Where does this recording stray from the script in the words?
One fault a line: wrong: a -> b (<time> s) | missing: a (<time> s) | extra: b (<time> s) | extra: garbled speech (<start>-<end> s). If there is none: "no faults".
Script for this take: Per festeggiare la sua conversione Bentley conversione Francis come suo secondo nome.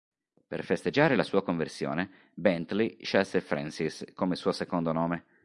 wrong: conversione -> scelse (3.0 s)